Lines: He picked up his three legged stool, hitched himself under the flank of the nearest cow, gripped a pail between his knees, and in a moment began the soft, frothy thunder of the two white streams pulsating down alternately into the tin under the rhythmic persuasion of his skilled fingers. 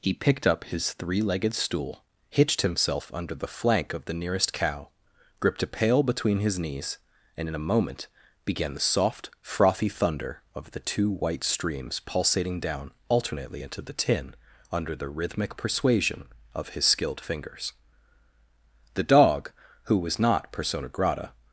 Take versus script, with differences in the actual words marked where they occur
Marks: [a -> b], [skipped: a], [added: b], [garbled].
He picked up his three legged stool, hitched himself under the flank of the nearest cow, gripped a pail between his knees, and in a moment began the soft, frothy thunder of the two white streams pulsating down alternately into the tin under the rhythmic persuasion of his skilled fingers. [added: The dog who was not persona grata]